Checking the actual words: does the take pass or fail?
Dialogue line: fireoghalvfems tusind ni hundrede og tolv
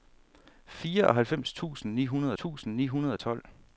fail